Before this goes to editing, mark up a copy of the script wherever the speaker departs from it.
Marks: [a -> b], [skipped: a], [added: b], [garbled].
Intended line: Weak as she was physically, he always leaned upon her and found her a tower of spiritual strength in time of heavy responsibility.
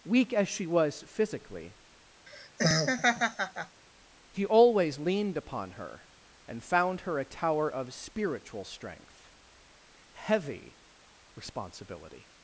Weak as she was physically, he always leaned upon her and found her a tower of spiritual strength [skipped: in time of] heavy responsibility.